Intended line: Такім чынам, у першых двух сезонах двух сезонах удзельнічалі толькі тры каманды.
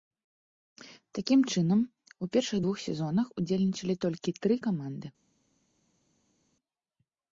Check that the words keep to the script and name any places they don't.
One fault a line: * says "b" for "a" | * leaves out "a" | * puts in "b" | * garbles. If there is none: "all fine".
* leaves out "двух сезонах"